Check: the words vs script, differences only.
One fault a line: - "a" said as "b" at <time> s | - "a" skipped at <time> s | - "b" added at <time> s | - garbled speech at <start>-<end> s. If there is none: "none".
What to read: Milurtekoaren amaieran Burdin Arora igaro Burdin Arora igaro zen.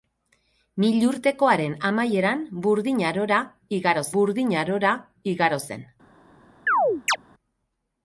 none